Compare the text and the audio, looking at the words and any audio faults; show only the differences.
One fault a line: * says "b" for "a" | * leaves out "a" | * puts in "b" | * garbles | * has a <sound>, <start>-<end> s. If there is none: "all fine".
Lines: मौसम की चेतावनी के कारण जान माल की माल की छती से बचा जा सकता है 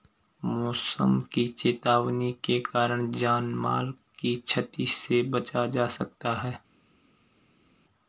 * leaves out "माल की"